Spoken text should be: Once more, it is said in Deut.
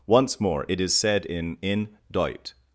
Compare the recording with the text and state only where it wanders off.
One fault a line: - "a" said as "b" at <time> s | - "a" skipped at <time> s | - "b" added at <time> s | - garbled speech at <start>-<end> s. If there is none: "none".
- "in" added at 1.6 s